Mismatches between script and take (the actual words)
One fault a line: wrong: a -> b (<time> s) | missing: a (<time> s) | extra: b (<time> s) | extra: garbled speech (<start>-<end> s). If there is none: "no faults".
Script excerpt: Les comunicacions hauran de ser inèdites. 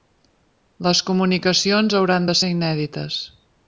no faults